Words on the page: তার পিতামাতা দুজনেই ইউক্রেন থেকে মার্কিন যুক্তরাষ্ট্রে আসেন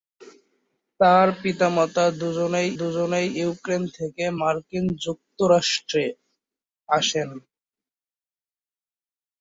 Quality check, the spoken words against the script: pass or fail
fail